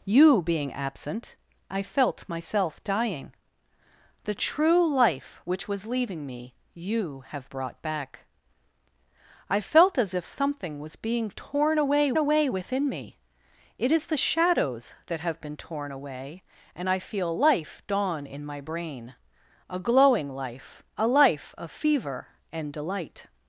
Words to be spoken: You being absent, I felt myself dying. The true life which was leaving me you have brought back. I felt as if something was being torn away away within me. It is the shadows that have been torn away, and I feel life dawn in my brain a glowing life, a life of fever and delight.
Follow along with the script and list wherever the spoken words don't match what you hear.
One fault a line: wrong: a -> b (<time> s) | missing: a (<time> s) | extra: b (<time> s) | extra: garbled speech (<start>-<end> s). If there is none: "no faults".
no faults